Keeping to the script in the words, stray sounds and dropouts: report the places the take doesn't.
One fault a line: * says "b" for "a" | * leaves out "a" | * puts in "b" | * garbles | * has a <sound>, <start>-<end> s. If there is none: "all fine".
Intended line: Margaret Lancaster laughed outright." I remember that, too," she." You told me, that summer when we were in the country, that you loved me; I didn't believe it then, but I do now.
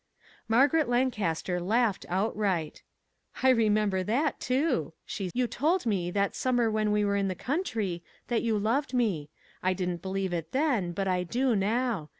all fine